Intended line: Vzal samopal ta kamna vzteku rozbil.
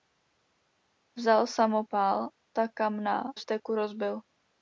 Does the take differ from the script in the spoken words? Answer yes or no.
no